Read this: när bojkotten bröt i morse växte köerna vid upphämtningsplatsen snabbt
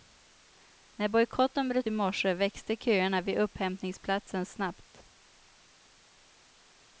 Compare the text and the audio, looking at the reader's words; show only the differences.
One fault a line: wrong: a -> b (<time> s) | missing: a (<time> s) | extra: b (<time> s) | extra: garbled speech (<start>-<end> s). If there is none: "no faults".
no faults